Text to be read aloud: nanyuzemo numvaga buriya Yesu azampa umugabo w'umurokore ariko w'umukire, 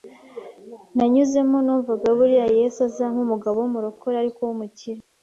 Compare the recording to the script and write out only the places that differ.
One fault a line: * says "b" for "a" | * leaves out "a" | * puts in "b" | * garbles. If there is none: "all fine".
all fine